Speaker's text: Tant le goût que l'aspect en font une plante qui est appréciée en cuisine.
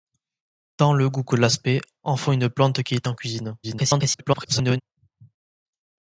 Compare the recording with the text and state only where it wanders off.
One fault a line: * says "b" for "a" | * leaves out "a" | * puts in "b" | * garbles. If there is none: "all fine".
* leaves out "appréciée"
* garbles